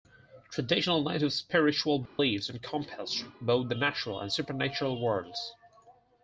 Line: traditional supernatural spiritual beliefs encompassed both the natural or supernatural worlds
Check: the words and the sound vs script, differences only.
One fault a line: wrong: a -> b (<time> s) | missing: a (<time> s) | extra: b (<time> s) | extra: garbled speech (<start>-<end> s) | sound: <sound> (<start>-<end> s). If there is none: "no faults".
wrong: supernatural -> native (1.0 s)
sound: dropout (2.1-2.2 s)
wrong: or -> and (4.2 s)